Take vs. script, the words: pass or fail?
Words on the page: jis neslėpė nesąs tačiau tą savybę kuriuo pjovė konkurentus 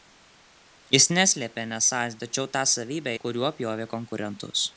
pass